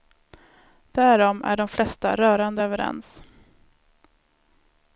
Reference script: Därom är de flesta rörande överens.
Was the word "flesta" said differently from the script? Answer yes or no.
no